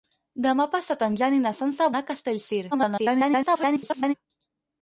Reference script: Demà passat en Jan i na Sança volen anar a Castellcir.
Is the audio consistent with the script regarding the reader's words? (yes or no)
no